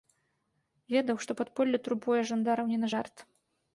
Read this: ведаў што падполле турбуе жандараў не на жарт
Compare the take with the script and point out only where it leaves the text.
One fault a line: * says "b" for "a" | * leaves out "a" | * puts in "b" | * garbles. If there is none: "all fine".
all fine